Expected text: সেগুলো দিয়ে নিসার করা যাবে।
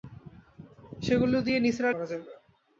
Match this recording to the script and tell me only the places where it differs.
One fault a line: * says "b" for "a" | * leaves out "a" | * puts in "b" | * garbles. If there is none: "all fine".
all fine